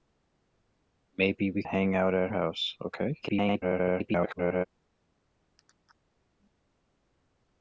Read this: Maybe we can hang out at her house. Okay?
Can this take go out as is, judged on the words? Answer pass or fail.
fail